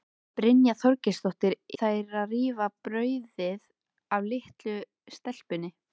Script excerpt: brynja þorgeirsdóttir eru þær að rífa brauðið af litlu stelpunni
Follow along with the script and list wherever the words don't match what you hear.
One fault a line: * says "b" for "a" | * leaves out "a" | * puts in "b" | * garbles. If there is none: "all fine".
* leaves out "eru"